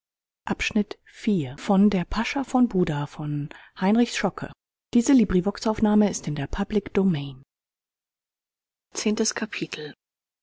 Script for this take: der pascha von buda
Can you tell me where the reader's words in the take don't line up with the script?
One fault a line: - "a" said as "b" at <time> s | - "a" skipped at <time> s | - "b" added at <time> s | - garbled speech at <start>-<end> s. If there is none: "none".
none